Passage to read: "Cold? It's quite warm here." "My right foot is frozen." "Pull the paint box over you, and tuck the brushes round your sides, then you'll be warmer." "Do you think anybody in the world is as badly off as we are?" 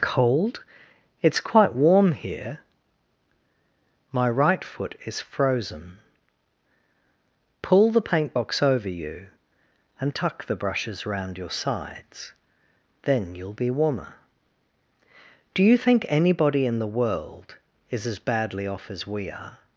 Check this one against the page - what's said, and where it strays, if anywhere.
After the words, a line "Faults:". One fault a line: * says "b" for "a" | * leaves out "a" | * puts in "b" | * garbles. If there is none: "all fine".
"Cold? It's quite warm here." "My right foot is frozen." "Pull the paint box over you, and tuck the brushes round your sides, then you'll be warmer." "Do you think anybody in the world is as badly off as we are?"
Faults:
all fine